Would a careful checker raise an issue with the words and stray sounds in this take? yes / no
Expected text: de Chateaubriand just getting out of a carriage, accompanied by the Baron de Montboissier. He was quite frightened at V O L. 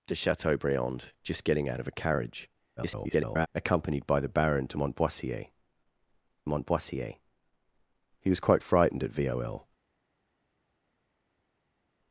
yes